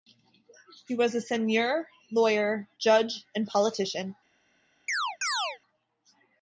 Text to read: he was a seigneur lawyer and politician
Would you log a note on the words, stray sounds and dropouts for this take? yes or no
yes